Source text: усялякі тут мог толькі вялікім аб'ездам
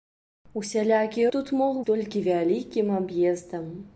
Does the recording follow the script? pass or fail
pass